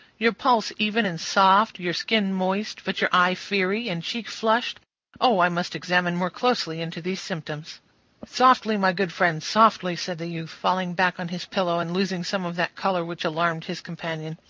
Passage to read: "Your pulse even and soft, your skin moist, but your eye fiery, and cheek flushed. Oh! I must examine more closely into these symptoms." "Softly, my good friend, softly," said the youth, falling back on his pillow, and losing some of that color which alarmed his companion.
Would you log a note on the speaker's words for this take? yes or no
no